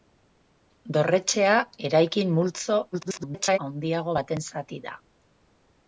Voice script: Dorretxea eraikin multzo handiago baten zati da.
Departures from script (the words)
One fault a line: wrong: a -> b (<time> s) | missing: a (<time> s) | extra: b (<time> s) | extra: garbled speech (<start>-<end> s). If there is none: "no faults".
extra: garbled speech (2.9-3.6 s)